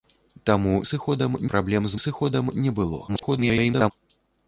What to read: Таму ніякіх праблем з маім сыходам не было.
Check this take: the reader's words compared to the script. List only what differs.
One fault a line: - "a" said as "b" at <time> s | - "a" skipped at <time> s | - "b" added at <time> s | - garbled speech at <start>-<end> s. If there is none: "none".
- "ніякіх" said as "сыходам" at 0.9 s
- "маім" skipped at 2.0 s
- garbled speech at 3.1-3.9 s